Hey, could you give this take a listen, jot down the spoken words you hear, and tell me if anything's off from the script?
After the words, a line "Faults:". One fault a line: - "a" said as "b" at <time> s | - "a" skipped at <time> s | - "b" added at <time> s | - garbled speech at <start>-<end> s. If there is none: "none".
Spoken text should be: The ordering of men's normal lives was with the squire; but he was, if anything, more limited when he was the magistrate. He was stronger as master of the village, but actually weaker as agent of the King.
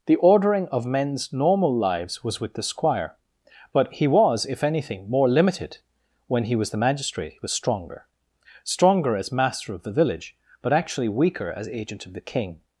The ordering of men's normal lives was with the squire; but he was, if anything, more limited when he was the magistrate. He was stronger stronger as master of the village, but actually weaker as agent of the King.
Faults:
- "stronger" added at 8.6 s